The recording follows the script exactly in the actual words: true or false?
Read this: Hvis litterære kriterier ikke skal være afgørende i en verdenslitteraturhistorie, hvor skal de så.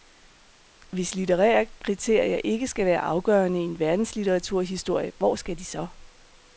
true